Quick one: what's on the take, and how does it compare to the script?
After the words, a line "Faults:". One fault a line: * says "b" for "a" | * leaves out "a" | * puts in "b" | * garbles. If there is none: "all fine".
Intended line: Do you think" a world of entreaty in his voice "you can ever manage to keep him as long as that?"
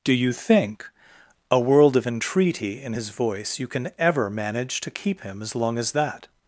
Do you think" a world of entreaty in his voice "you can ever manage to keep him as long as that?"
Faults:
all fine